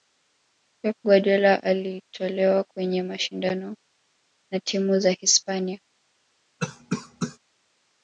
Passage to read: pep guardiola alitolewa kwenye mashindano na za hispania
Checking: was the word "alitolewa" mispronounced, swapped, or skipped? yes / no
no